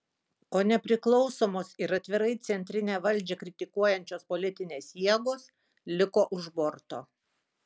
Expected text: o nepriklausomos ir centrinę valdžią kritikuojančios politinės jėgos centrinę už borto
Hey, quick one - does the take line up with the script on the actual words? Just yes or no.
no